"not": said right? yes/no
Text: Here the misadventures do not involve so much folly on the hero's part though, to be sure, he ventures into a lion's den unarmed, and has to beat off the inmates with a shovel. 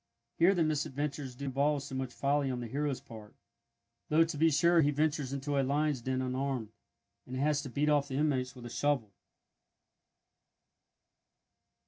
no